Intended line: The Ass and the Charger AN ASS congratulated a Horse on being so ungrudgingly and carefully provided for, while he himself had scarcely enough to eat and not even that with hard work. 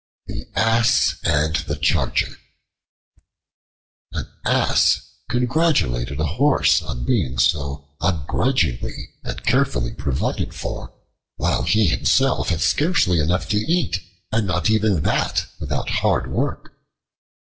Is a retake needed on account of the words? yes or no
yes